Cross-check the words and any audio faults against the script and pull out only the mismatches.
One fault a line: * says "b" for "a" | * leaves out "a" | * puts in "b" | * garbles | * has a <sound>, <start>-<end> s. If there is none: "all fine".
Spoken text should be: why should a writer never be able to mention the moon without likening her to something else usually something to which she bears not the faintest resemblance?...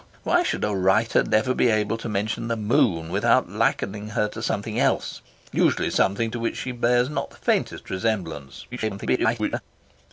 * garbles